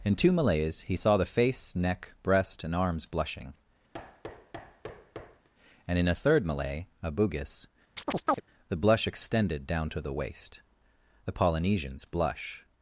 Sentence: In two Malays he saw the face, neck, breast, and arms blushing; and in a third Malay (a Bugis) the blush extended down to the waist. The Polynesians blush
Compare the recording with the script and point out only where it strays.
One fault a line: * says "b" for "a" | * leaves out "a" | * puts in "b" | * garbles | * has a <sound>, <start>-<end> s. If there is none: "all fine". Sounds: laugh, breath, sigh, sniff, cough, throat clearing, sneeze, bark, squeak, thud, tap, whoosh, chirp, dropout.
* has a thud, 3.9-5.5 s
* has a chirp, 8.0-8.4 s